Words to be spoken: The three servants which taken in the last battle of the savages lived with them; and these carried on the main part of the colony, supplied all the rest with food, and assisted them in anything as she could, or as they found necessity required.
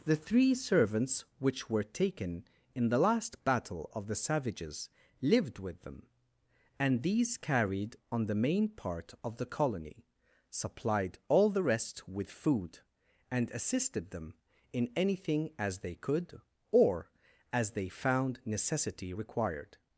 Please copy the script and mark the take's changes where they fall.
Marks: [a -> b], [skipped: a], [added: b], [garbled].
The three servants which [added: were] taken in the last battle of the savages lived with them; and these carried on the main part of the colony, supplied all the rest with food, and assisted them in anything as [she -> they] could, or as they found necessity required.